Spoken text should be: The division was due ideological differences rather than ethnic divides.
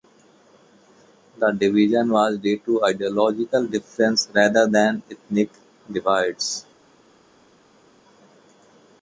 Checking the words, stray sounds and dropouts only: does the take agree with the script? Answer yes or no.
no